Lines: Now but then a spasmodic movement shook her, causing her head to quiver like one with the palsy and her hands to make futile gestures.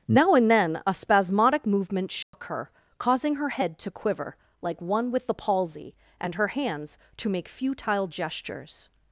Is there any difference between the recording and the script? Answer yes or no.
yes